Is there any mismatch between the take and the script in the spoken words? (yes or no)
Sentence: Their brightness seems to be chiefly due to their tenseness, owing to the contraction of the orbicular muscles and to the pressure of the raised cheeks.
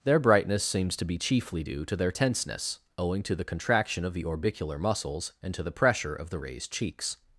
no